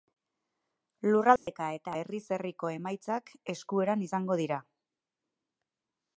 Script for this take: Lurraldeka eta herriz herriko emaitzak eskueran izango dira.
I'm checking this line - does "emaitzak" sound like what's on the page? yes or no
yes